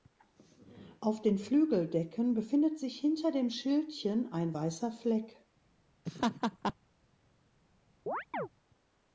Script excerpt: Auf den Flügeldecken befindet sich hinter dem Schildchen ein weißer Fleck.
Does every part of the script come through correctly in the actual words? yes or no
yes